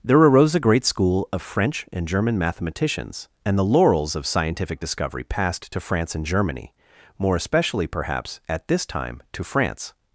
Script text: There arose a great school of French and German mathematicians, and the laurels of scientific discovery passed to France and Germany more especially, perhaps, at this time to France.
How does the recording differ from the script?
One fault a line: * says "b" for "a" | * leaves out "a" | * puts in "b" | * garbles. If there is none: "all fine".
all fine